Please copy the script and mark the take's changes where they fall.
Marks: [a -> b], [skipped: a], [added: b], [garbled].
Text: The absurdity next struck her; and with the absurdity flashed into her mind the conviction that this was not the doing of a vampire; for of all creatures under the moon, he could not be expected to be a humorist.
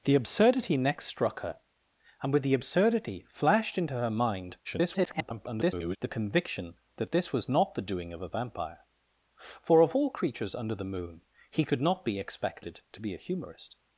The absurdity next struck her; and with the absurdity flashed into her mind [garbled] the conviction that this was not the doing of a vampire; for of all creatures under the moon, he could not be expected to be a humorist.